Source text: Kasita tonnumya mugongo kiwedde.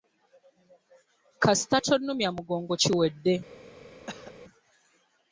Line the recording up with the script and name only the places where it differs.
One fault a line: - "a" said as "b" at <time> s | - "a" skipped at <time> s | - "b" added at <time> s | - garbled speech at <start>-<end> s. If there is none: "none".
none